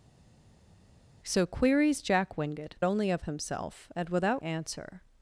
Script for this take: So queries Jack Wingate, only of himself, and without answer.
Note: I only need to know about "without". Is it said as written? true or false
true